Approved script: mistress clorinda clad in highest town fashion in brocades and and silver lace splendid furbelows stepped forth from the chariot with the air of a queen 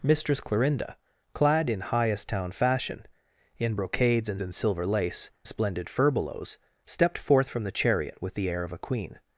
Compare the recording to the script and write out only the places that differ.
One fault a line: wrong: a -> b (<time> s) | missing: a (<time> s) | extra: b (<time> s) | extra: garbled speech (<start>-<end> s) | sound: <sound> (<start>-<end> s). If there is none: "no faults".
no faults